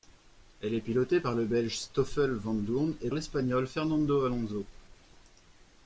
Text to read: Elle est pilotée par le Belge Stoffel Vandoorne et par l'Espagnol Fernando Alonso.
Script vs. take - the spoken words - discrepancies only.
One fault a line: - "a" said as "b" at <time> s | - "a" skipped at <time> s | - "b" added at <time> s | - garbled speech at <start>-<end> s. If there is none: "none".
- "par" skipped at 3.1 s